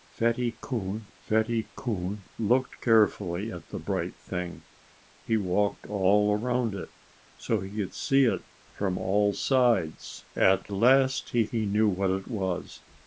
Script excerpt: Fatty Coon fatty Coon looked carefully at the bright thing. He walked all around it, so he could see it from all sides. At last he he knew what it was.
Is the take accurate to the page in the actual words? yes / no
yes